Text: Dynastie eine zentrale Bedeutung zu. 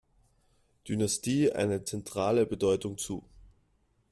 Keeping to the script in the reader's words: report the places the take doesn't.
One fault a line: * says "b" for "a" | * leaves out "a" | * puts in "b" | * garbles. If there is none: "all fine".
all fine